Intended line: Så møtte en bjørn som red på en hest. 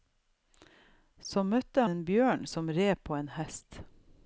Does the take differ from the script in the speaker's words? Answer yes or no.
no